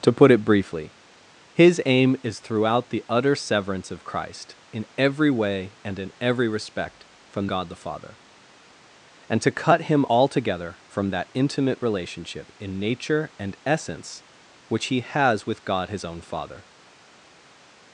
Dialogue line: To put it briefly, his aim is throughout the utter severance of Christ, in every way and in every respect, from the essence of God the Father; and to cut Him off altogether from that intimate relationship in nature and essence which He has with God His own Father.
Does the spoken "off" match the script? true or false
false